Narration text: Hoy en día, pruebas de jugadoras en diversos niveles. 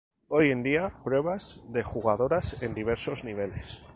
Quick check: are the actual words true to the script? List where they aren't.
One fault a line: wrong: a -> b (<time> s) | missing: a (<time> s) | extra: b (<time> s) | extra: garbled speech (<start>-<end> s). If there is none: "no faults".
no faults